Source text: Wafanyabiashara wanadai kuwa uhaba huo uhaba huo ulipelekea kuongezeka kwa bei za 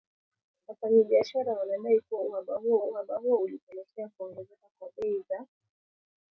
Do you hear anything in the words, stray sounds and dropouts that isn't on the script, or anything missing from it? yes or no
no